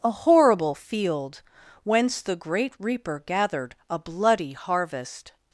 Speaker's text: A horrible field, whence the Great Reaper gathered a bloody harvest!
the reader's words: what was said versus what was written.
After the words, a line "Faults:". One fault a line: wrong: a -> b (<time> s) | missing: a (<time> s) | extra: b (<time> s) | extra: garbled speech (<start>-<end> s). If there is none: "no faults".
A horrible field, whence the Great Reaper gathered a bloody harvest!
Faults:
no faults